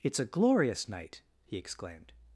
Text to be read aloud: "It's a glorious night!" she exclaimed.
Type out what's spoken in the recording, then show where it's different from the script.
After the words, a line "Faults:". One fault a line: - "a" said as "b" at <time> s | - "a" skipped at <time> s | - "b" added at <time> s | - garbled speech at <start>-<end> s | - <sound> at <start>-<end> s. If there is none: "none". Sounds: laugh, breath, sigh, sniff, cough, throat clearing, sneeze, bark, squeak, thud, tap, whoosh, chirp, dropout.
"It's a glorious night!" he exclaimed.
Faults:
- "she" said as "he" at 1.4 s